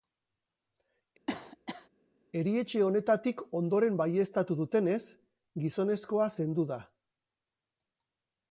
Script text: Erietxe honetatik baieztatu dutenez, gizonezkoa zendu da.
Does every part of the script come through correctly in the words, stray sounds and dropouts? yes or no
no